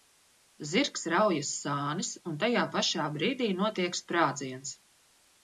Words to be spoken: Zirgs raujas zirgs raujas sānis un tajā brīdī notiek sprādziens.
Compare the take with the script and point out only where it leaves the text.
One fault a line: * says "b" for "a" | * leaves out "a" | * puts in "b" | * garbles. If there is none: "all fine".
* leaves out "zirgs raujas"
* puts in "pašā"